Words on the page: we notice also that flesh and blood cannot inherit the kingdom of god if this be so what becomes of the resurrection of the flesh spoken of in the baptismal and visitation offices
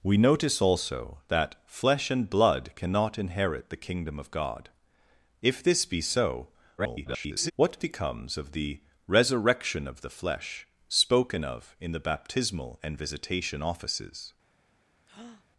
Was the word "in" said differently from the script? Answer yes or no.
no